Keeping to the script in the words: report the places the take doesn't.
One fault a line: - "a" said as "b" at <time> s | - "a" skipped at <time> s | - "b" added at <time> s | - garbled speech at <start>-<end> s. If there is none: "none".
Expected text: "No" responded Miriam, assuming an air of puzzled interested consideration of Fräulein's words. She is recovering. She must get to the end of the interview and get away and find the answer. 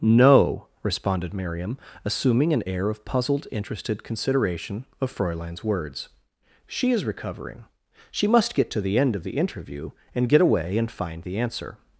none